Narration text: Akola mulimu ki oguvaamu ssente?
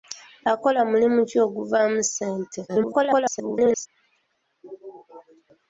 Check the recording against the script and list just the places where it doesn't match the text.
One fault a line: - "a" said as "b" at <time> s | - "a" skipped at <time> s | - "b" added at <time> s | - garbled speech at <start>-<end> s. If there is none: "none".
- garbled speech at 2.7-3.9 s